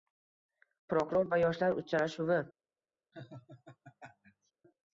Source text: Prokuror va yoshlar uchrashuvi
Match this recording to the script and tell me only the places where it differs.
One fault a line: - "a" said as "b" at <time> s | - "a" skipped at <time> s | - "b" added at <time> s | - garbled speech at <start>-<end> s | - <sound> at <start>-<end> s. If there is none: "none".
- laugh at 3.1-4.5 s